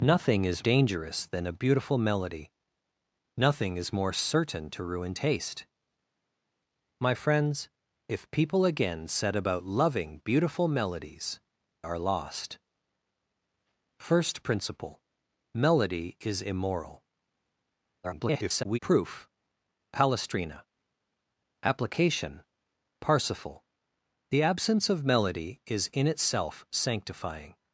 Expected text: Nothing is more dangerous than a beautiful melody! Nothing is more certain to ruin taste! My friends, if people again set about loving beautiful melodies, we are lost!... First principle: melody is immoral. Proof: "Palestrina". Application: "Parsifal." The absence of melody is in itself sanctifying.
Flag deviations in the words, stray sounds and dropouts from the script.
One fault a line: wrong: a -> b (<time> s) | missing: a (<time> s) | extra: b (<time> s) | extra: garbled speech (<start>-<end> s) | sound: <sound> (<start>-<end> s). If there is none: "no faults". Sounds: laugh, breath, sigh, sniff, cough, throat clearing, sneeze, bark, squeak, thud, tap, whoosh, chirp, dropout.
missing: more (0.6 s)
missing: we (11.4 s)
extra: garbled speech (18.0-18.8 s)